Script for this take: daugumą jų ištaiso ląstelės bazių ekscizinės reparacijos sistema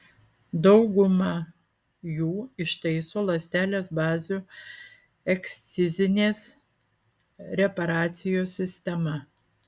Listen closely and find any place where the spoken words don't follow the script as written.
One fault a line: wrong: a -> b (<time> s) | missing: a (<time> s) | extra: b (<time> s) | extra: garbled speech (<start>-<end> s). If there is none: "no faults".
no faults